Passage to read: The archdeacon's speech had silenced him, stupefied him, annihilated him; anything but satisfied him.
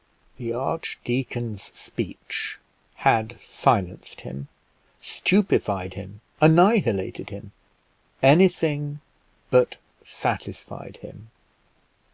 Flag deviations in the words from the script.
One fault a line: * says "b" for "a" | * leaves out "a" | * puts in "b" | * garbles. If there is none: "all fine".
all fine